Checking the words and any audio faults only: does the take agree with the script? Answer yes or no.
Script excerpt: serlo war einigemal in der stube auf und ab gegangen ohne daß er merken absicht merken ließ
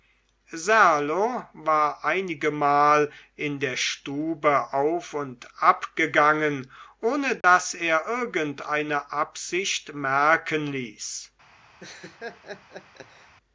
no